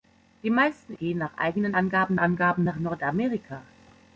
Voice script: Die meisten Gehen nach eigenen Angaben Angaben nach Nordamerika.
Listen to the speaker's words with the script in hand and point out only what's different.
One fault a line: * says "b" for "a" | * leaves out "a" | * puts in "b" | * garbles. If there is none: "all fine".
all fine